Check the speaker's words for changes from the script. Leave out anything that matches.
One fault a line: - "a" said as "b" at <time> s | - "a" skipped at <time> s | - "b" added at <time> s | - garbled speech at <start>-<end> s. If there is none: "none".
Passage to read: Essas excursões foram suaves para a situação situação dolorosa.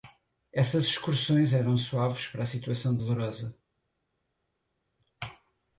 - "foram" said as "eram" at 1.5 s
- "situação" skipped at 3.0 s